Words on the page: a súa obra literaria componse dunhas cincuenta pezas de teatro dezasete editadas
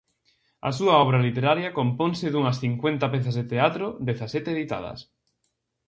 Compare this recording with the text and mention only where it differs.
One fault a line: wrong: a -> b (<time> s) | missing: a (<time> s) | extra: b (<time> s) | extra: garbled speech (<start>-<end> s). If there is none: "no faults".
no faults